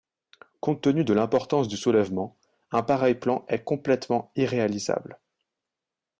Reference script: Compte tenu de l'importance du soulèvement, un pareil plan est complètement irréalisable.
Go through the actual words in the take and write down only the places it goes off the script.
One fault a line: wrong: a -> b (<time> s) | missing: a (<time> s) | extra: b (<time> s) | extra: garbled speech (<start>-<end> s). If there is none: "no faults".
no faults